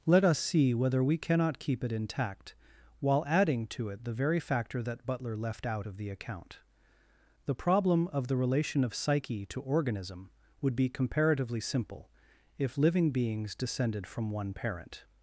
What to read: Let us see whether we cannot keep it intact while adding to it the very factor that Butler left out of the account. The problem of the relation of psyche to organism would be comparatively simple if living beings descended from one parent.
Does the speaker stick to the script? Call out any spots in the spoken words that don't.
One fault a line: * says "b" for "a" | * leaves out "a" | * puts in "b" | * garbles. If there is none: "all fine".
all fine